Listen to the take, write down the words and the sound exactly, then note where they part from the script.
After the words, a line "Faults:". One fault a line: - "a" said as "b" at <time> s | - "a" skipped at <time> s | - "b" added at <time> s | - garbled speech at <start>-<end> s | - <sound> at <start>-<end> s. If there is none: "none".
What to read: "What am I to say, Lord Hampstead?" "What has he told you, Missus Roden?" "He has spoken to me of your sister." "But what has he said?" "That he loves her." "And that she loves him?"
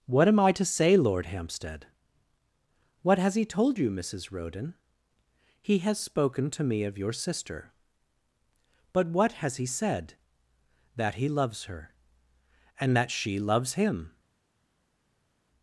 "What am I to say, Lord Hampstead?" "What has he told you, Missus Roden?" "He has spoken to me of your sister." "But what has he said?" "That he loves her." "And that she loves him?"
Faults:
none